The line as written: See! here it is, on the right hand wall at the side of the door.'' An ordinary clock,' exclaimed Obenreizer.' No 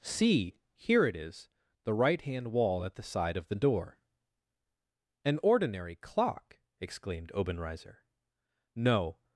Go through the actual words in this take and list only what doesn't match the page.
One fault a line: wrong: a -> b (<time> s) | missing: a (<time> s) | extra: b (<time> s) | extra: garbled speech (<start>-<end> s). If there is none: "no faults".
missing: on (1.5 s)